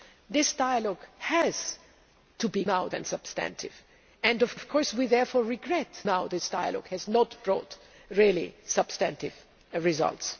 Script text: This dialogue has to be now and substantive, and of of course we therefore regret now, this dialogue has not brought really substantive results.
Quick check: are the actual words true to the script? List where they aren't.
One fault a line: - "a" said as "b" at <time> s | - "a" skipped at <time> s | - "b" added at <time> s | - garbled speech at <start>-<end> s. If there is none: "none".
none